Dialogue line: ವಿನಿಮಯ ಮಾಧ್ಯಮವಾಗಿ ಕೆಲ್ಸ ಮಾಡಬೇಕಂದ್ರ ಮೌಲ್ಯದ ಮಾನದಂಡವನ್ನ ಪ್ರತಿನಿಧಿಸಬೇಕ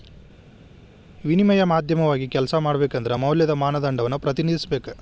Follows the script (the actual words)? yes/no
yes